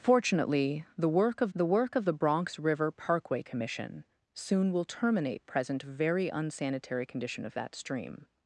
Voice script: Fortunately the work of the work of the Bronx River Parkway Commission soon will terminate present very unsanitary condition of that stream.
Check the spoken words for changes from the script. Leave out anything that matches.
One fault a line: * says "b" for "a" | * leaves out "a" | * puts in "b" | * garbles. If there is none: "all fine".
all fine